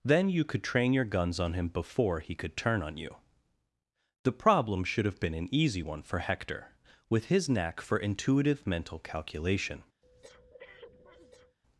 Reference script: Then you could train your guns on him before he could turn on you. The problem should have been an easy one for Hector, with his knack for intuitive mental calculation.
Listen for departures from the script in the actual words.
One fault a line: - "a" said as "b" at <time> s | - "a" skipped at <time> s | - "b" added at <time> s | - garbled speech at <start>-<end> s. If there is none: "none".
none